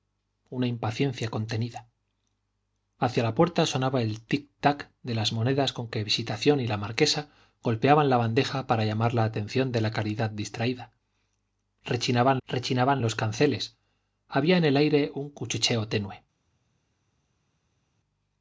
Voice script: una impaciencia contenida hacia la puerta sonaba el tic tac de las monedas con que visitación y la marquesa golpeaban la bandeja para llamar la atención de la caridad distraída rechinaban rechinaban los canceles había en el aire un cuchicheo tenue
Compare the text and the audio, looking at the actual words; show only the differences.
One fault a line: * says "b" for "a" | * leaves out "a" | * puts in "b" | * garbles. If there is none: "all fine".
all fine